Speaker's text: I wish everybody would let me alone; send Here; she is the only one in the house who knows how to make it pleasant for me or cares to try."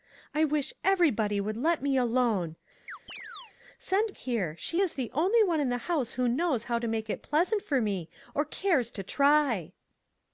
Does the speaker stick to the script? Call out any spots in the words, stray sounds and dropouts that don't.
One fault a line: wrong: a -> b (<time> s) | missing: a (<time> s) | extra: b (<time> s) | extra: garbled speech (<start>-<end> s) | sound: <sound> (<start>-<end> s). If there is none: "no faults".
sound: chirp (2.9-3.5 s)